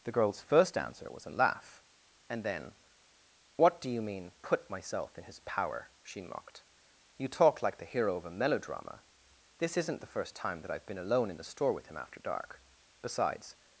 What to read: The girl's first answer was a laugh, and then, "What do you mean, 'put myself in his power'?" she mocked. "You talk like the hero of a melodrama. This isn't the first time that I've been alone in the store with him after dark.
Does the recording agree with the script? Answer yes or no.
no